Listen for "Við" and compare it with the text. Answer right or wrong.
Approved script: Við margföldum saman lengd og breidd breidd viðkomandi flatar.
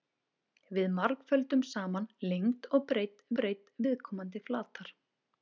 right